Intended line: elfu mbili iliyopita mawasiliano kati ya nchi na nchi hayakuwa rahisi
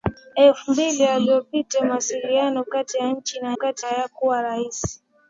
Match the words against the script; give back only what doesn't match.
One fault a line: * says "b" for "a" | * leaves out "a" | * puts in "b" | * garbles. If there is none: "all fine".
* says "kati" for "nchi"